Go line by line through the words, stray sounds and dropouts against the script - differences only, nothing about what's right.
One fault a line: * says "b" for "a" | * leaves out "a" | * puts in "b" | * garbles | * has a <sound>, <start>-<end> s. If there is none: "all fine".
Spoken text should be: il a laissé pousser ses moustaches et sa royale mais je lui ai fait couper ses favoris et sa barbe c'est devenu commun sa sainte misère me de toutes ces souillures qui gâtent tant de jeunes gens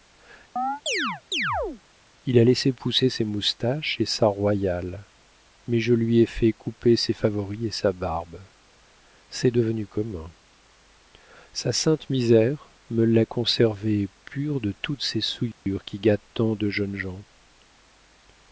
* has a chirp, 0.6-1.8 s
* puts in "l'a conservé pur"
* has a dropout, 15.5-15.7 s